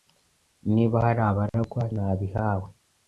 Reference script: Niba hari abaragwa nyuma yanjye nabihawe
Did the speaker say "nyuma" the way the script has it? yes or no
no